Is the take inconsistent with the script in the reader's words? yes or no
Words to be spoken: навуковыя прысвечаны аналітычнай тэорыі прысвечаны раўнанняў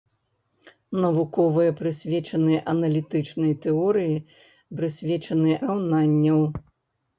no